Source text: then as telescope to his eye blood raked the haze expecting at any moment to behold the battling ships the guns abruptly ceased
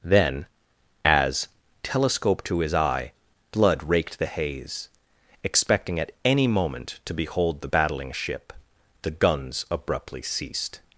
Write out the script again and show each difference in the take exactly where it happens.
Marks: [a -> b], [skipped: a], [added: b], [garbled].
then as telescope to his eye blood raked the haze expecting at any moment to behold the battling [ships -> ship] the guns abruptly ceased